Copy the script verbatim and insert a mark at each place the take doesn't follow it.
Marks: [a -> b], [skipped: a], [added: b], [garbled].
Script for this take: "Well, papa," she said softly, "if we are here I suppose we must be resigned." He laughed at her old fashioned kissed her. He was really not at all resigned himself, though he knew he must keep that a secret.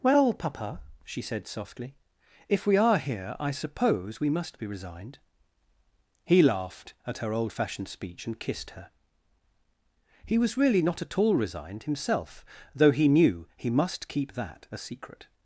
"Well, papa," she said softly, "if we are here I suppose we must be resigned." He laughed at her old fashioned [added: speech and] kissed her. He was really not at all resigned himself, though he knew he must keep that a secret.